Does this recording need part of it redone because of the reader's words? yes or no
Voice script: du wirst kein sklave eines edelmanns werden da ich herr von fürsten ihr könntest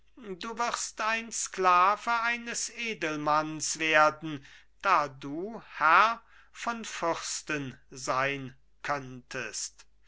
yes